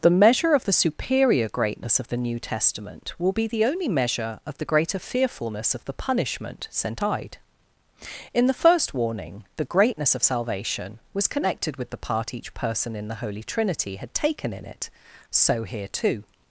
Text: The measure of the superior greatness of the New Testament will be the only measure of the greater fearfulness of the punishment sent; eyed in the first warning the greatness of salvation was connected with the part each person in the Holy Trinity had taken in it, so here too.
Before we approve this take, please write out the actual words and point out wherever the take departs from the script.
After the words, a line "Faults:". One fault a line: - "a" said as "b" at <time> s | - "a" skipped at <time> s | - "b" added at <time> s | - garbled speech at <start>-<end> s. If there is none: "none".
The measure of the superior greatness of the New Testament will be the only measure of the greater fearfulness of the punishment sent; eyed in the first warning the greatness of salvation was connected with the part each person in the Holy Trinity had taken in it, so here too.
Faults:
none